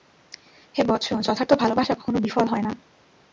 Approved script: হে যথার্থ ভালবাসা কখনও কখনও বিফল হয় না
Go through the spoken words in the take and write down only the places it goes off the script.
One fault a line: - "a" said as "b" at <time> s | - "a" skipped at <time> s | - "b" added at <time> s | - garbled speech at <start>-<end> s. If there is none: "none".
- "বৎস" added at 0.8 s
- "কখনও" skipped at 2.2 s